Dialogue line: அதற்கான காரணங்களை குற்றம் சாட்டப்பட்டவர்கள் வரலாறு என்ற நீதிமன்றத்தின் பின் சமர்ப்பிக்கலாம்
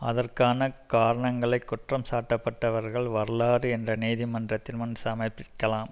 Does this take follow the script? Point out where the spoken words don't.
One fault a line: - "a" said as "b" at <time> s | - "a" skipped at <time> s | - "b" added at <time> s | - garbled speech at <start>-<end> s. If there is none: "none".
- "பின்" said as "முன்" at 4.8 s